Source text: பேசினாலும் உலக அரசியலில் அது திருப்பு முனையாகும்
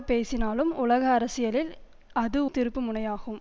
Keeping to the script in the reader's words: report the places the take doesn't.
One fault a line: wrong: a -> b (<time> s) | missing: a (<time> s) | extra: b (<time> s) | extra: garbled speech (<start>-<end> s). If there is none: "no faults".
no faults